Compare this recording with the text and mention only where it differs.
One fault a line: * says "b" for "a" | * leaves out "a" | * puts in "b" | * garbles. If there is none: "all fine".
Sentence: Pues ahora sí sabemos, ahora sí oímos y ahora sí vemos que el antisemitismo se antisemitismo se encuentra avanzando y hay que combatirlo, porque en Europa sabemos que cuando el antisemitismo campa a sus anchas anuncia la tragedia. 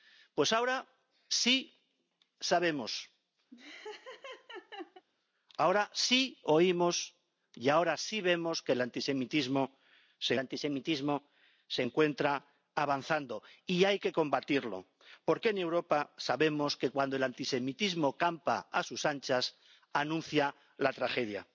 all fine